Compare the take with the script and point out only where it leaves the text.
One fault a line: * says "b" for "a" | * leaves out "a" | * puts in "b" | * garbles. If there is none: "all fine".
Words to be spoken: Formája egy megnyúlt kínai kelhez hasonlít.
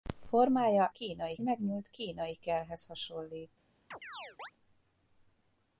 * says "kínai" for "egy"